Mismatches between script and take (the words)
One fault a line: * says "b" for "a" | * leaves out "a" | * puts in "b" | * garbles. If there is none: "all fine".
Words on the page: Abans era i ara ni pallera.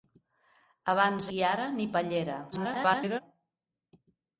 * leaves out "era"
* garbles